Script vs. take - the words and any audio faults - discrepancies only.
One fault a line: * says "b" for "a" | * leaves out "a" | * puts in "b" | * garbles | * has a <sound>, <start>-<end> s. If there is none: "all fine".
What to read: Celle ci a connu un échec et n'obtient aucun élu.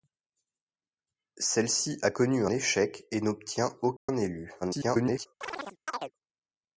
* leaves out "un"
* has a dropout, 4.0-4.1 s
* garbles
* has a chirp, 5.4-6.1 s